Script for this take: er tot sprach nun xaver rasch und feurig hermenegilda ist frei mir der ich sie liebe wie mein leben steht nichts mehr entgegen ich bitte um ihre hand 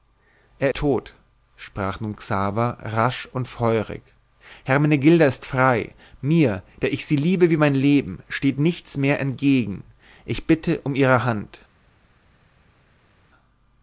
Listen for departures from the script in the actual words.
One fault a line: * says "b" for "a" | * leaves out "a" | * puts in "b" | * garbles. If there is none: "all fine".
all fine